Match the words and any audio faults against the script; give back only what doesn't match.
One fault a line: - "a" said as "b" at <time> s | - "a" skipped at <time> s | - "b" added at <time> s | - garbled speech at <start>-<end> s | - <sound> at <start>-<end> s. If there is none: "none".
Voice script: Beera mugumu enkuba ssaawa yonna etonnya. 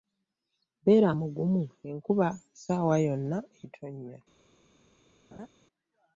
- laugh at 5.3-5.5 s